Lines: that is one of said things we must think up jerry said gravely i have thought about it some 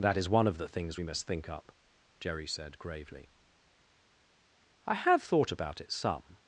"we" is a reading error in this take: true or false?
false